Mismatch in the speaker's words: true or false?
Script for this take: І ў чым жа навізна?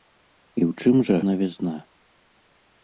false